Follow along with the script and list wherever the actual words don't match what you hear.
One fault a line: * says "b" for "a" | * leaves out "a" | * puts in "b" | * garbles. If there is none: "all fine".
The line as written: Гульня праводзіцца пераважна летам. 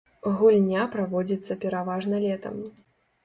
all fine